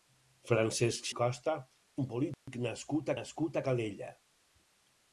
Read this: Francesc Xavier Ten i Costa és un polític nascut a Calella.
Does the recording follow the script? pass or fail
fail